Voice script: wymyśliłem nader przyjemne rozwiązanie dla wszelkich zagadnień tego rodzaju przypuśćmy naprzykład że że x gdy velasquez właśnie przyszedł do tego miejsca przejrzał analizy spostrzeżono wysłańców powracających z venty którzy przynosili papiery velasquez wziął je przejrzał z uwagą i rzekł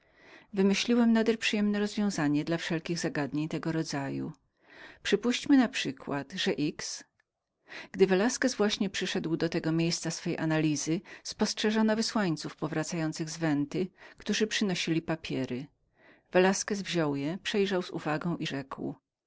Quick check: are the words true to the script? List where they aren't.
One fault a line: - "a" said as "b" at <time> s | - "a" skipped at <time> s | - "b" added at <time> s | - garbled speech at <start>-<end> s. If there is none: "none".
- "że" skipped at 6.5 s
- "przejrzał" said as "swej" at 10.1 s